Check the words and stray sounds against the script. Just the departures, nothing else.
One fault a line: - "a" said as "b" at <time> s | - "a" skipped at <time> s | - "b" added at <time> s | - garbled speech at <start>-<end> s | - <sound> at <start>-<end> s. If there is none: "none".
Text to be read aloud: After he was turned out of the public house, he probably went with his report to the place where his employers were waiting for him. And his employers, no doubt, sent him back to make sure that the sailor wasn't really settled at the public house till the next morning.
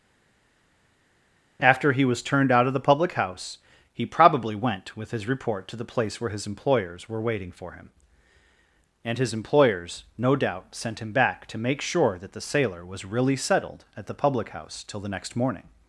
- "wasn't" said as "was" at 12.9 s